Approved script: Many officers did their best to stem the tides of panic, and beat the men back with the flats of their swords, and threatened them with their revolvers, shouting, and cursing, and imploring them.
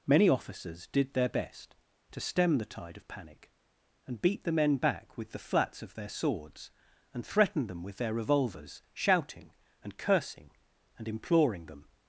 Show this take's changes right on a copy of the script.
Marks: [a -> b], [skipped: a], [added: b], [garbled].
Many officers did their best to stem the [tides -> tide] of panic, and beat the men back with the flats of their swords, and threatened them with their revolvers, shouting, and cursing, and imploring them.